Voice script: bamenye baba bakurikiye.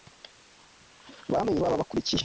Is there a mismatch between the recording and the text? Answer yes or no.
no